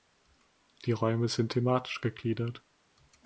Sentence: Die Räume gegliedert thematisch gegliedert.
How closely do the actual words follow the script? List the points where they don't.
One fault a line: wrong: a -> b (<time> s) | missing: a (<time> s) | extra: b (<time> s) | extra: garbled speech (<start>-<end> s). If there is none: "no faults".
wrong: gegliedert -> sind (1.3 s)